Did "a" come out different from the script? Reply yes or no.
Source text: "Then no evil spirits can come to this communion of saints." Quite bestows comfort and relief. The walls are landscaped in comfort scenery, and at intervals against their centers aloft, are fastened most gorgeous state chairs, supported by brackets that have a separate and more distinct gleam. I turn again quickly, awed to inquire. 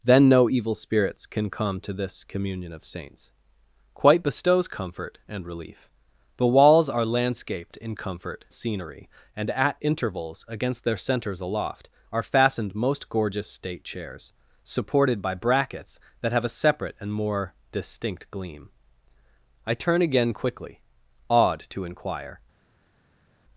no